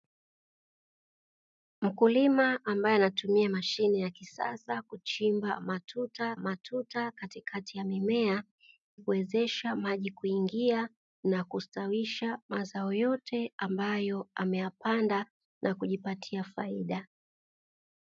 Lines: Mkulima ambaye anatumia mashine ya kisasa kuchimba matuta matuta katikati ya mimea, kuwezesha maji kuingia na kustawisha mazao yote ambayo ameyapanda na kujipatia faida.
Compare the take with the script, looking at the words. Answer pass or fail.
pass